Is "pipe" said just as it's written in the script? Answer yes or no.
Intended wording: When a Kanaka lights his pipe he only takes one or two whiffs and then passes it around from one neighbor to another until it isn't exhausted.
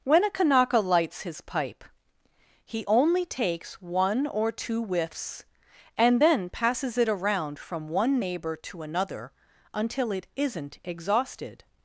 yes